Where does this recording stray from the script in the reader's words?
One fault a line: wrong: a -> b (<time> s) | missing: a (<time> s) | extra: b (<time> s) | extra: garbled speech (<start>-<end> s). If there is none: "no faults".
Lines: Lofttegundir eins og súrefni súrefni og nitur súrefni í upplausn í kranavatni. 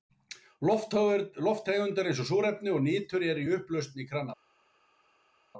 missing: súrefni (2.8 s)
wrong: súrefni -> eru (3.3 s)